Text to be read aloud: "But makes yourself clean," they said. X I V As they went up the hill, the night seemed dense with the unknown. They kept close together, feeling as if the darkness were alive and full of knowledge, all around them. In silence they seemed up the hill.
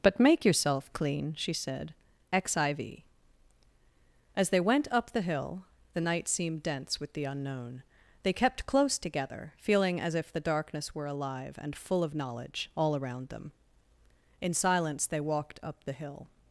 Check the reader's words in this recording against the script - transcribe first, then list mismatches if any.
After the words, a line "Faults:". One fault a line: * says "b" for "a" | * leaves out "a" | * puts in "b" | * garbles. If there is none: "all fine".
"But make yourself clean," she said. X I V As they went up the hill, the night seemed dense with the unknown. They kept close together, feeling as if the darkness were alive and full of knowledge, all around them. In silence they walked up the hill.
Faults:
* says "make" for "makes"
* says "she" for "they"
* says "walked" for "seemed"